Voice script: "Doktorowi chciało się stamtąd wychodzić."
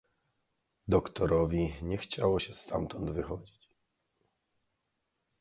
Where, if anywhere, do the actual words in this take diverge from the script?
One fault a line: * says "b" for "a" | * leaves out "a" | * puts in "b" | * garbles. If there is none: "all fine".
* puts in "nie"